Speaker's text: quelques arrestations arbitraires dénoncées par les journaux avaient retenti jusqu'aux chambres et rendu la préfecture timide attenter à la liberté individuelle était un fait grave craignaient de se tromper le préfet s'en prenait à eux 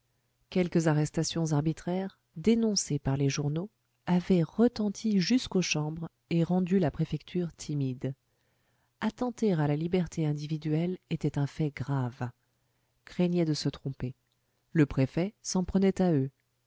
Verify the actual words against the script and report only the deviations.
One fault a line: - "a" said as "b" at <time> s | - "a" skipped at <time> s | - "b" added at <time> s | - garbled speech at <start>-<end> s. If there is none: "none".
none